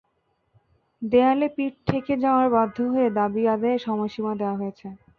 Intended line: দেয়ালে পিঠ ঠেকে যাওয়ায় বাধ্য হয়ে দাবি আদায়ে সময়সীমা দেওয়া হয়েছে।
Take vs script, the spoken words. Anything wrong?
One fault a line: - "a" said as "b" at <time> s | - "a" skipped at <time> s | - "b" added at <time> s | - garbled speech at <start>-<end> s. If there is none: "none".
none